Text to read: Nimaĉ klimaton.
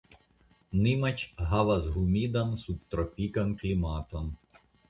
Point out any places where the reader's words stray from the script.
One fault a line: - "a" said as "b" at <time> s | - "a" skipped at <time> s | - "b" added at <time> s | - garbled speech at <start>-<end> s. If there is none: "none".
- "havas humidan subtropikan" added at 1.5 s